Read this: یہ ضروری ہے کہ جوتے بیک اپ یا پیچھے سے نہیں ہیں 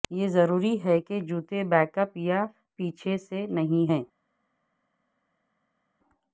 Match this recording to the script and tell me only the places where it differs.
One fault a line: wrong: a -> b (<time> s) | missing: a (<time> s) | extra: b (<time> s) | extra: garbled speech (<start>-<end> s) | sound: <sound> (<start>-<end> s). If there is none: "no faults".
no faults